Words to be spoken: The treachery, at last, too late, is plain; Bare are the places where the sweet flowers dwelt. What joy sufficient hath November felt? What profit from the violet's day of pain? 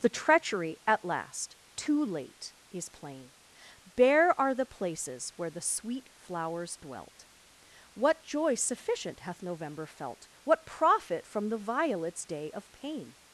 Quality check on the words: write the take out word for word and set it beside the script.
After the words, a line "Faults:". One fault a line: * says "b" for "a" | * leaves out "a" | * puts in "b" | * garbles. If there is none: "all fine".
The treachery, at last, too late, is plain; Bare are the places where the sweet flowers dwelt. What joy sufficient hath November felt? What profit from the violet's day of pain?
Faults:
all fine